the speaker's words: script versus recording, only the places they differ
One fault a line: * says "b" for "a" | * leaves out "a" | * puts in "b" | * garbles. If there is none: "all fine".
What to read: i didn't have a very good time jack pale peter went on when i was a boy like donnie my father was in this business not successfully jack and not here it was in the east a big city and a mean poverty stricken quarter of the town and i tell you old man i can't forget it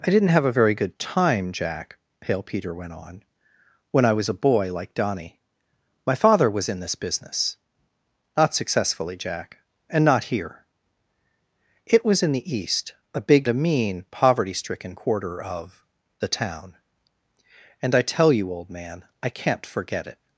* leaves out "city and"